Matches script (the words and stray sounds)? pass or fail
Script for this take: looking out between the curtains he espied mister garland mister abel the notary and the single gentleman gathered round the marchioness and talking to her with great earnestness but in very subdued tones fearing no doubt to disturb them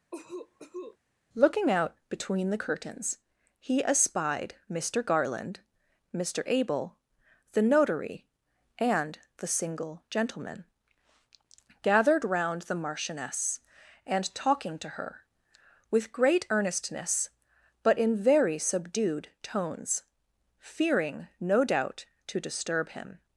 fail